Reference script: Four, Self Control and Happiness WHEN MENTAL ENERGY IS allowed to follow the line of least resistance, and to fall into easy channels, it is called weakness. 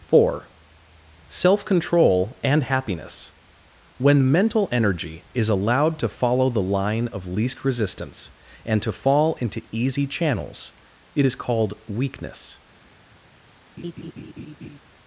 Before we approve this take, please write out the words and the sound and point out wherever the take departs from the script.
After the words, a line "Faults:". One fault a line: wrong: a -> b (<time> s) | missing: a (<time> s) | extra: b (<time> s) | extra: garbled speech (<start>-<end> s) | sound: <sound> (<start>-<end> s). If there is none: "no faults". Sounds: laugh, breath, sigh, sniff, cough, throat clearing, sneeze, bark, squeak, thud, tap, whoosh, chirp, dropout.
Four, Self Control and Happiness WHEN MENTAL ENERGY IS allowed to follow the line of least resistance, and to fall into easy channels, it is called weakness.
Faults:
sound: laugh (13.8-14.8 s)